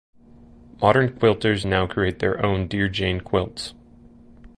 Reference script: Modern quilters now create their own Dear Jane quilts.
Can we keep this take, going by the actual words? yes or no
yes